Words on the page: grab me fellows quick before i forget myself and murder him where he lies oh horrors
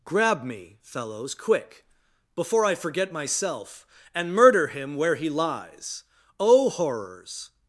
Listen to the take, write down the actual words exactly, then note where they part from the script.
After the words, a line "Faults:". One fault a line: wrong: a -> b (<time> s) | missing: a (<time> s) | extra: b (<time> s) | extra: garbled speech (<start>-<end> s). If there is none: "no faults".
grab me fellows quick before i forget myself and murder him where he lies oh horrors
Faults:
no faults